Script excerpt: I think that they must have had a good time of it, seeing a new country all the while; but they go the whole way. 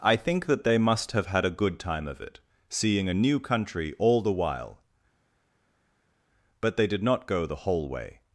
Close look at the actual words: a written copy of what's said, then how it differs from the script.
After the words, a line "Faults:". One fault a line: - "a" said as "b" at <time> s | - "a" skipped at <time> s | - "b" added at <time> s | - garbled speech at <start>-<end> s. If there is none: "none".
I think that they must have had a good time of it, seeing a new country all the while; but they did not go the whole way.
Faults:
- "did not" added at 6.9 s